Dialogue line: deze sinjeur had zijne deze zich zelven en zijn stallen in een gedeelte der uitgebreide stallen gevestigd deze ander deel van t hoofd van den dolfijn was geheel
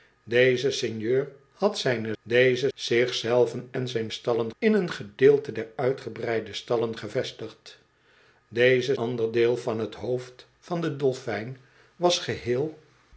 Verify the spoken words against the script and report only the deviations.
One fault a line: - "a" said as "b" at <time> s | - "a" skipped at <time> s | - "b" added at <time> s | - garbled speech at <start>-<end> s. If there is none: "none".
none